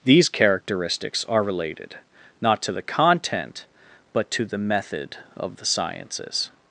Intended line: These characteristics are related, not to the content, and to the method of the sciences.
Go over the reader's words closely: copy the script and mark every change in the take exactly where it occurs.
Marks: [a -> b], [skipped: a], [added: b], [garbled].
These characteristics are related, not to the content, [and -> but] to the method of the sciences.